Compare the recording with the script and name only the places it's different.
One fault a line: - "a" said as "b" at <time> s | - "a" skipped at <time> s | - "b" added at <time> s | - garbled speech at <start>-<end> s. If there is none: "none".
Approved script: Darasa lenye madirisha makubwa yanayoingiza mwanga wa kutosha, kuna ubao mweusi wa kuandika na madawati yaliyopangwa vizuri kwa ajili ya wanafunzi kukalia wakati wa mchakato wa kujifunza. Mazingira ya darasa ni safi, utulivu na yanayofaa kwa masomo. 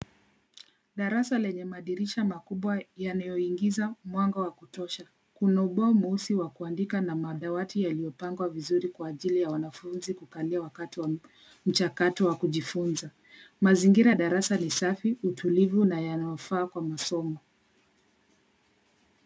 none